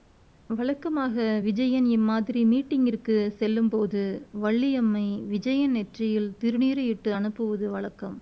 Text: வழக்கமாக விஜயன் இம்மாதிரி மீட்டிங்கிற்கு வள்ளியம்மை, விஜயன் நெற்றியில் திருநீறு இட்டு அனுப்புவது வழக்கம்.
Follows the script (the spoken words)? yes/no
no